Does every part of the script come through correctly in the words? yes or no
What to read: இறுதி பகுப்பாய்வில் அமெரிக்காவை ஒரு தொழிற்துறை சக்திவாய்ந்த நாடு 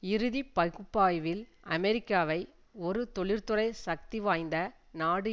yes